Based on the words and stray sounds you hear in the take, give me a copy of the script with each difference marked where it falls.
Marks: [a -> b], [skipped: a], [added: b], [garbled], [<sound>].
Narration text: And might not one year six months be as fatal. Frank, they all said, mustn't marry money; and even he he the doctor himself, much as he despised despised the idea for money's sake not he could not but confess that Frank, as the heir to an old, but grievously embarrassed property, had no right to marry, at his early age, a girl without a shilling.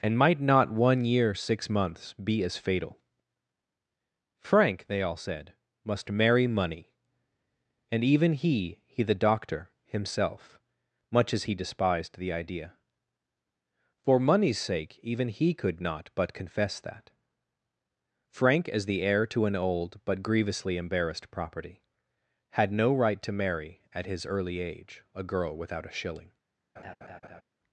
And might not one year six months be as fatal. Frank, they all said, [mustn't -> must] marry money; and even he he the doctor himself, much as he despised [skipped: despised] the idea for money's sake [not -> even] he could not but confess that Frank, as the heir to an old, but grievously embarrassed property, had no right to marry, at his early age, a girl without a shilling. [laugh]